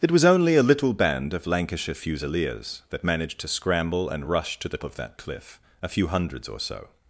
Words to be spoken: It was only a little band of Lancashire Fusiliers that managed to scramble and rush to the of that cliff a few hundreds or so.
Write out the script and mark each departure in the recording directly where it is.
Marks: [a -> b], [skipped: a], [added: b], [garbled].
It was only a little band of Lancashire Fusiliers that managed to scramble and rush to the of that cliff a few hundreds or so.